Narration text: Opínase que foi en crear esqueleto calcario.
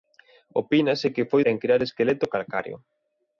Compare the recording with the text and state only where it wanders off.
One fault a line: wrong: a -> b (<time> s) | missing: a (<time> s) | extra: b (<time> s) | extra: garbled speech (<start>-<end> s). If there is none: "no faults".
no faults